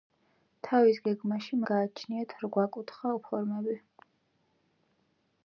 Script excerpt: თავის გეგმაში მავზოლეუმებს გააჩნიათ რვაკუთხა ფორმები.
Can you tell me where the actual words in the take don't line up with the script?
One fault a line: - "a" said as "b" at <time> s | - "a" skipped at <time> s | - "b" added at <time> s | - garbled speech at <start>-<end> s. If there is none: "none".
- "მავზოლეუმებს" skipped at 1.6 s